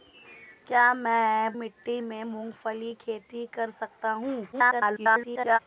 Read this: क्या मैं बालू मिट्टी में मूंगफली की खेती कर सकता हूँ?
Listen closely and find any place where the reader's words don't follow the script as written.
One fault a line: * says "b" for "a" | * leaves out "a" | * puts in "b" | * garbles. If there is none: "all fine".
* leaves out "बालू"
* leaves out "की"
* garbles